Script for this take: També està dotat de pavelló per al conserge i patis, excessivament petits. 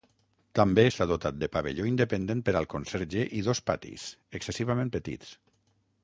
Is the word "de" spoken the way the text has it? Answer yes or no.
yes